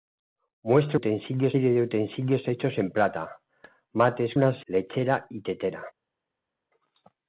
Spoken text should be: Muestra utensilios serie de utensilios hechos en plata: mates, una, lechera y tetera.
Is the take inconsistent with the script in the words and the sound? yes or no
no